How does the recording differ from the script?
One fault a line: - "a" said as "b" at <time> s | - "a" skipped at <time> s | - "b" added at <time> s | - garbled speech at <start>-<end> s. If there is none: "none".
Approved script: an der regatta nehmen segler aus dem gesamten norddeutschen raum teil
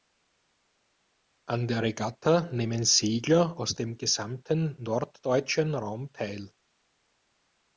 none